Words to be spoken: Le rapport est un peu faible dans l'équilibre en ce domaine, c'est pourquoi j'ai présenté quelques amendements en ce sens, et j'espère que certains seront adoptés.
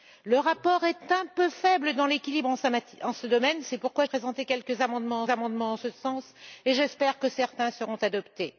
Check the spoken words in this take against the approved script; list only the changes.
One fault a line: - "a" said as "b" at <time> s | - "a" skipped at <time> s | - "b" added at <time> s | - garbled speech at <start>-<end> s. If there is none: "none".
- "j'ai" skipped at 4.0 s
- "amendements" added at 5.3 s